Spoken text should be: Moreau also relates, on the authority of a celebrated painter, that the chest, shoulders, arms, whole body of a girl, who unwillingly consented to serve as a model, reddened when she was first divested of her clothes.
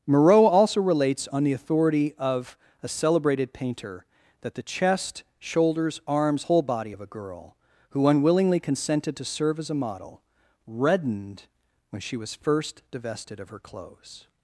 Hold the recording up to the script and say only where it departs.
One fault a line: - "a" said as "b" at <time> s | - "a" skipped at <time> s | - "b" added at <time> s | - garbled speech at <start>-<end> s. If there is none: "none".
none